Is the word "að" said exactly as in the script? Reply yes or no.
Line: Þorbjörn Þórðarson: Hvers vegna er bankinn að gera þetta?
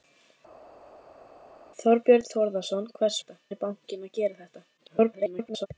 yes